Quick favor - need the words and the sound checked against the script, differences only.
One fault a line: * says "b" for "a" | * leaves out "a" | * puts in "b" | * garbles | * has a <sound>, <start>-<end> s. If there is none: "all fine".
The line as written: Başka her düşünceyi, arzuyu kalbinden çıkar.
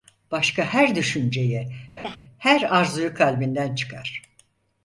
* has a laugh, 2.0-2.2 s
* puts in "her"